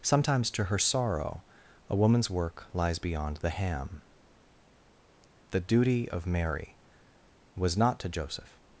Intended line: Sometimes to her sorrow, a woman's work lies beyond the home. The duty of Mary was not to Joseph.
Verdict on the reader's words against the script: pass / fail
fail